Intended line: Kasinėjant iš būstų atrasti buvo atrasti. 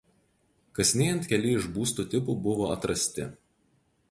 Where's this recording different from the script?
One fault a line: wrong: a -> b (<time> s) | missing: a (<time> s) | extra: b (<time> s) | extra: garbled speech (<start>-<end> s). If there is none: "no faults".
extra: keli (1.3 s)
wrong: atrasti -> tipų (2.1 s)